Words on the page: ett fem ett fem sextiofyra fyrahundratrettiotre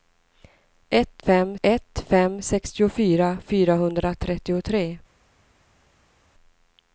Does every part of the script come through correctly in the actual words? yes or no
yes